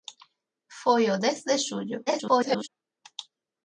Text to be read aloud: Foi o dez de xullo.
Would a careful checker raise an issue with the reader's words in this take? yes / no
yes